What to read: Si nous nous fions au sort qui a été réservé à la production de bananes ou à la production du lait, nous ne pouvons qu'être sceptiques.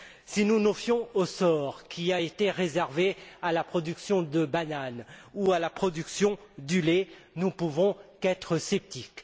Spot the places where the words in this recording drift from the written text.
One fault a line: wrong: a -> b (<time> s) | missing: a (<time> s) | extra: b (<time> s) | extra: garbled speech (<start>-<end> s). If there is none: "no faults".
no faults